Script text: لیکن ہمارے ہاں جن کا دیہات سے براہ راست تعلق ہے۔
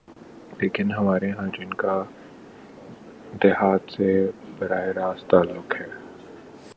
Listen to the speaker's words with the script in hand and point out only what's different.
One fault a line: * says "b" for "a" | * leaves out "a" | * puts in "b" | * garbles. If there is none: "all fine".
all fine